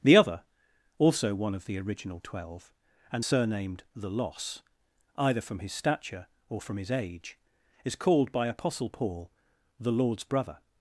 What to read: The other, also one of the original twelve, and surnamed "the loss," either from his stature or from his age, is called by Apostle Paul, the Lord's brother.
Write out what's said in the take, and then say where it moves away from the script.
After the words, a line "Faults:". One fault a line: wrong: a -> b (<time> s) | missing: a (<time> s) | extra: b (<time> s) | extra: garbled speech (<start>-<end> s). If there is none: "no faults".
The other, also one of the original twelve, and surnamed "the loss," either from his stature or from his age, is called by Apostle Paul, the Lord's brother.
Faults:
no faults